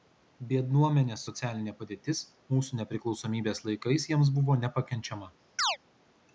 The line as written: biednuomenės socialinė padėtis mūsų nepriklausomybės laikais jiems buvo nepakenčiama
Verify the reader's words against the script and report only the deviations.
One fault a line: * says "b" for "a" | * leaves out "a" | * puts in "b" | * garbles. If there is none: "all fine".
all fine